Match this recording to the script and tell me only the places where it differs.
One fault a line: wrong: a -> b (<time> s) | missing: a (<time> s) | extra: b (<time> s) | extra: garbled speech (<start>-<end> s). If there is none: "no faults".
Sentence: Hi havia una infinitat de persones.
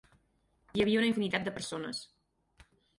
no faults